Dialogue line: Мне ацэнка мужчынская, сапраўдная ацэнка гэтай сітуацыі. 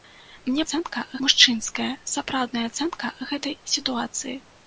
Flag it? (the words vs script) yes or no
no